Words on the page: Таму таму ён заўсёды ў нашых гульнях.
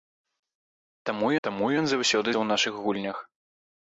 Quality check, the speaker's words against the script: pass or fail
pass